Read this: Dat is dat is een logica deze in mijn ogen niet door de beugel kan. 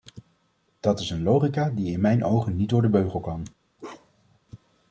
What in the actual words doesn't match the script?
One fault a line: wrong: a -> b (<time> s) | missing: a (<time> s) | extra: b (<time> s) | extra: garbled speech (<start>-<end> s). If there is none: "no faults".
missing: dat is (1.1 s)
wrong: deze -> die (1.7 s)